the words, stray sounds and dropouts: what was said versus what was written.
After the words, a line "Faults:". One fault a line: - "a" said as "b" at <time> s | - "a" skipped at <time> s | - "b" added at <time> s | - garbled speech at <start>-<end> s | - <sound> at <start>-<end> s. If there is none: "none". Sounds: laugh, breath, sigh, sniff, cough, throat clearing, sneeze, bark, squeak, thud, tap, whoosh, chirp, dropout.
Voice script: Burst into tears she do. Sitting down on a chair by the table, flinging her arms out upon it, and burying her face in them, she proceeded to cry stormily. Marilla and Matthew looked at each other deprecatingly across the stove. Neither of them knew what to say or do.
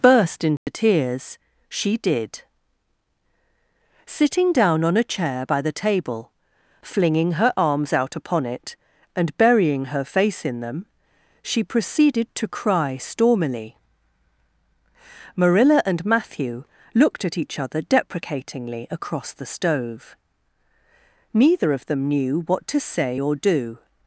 Burst into tears she did. Sitting down on a chair by the table, flinging her arms out upon it, and burying her face in them, she proceeded to cry stormily. Marilla and Matthew looked at each other deprecatingly across the stove. Neither of them knew what to say or do.
Faults:
- dropout at 0.6-0.7 s
- "do" said as "did" at 1.9 s